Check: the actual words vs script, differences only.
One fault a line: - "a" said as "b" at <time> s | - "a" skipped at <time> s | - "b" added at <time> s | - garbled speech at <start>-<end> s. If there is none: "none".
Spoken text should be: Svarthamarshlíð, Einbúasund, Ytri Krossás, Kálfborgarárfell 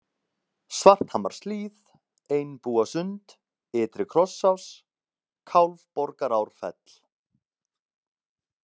none